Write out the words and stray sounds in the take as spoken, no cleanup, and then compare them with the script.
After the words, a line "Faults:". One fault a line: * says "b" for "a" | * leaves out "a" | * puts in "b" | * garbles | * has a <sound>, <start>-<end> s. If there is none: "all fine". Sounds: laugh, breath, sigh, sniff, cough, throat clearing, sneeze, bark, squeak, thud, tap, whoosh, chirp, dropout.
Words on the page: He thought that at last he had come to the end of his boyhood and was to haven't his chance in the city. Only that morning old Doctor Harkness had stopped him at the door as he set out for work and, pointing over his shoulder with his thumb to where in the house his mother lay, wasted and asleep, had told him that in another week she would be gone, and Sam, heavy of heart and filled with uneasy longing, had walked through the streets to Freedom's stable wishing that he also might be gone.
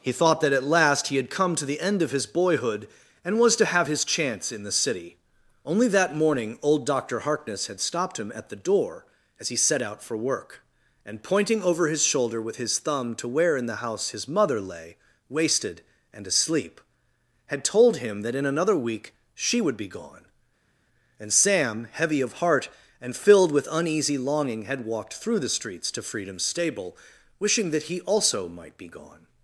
He thought that at last he had come to the end of his boyhood and was to have his chance in the city. Only that morning old Doctor Harkness had stopped him at the door as he set out for work and, pointing over his shoulder with his thumb to where in the house his mother lay, wasted and asleep, had told him that in another week she would be gone, and Sam, heavy of heart and filled with uneasy longing, had walked through the streets to Freedom's stable wishing that he also might be gone.
Faults:
* says "have" for "haven't"